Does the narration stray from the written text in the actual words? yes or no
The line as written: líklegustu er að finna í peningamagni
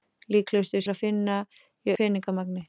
no